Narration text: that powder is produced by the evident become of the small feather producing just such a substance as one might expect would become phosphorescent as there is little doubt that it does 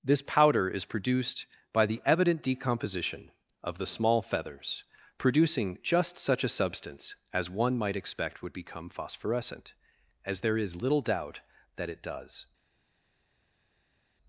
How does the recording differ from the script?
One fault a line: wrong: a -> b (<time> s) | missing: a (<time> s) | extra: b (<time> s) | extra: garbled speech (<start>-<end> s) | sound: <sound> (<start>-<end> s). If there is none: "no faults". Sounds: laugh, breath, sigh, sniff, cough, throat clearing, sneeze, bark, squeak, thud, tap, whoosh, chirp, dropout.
wrong: that -> this (0.0 s)
wrong: become -> decomposition (2.4 s)
wrong: feather -> feathers (4.2 s)